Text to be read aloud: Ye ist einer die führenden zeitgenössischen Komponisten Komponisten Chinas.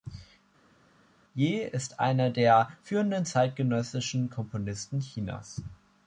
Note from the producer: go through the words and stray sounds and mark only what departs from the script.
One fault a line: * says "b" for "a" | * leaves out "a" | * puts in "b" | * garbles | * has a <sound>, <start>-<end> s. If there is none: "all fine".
* says "der" for "die"
* leaves out "Komponisten"